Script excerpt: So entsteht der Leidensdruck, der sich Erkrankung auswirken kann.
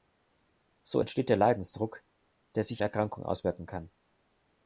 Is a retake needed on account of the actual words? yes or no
no